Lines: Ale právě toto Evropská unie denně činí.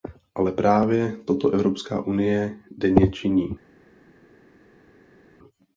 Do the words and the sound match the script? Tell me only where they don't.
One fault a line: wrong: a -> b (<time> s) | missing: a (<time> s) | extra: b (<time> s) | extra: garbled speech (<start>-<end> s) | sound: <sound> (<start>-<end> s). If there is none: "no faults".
no faults